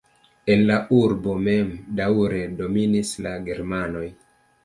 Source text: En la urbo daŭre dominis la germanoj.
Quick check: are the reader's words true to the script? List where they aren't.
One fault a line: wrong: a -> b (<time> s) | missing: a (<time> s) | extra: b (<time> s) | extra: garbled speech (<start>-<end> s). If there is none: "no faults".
extra: mem (1.5 s)